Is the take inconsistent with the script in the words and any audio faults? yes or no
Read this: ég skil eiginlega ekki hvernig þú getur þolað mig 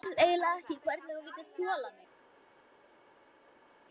no